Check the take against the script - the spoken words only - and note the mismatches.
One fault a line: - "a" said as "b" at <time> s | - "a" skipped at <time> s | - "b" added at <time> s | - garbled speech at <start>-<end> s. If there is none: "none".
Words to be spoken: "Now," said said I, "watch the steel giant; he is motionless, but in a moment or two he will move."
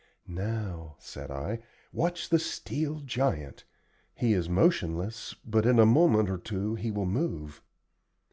- "said" skipped at 1.3 s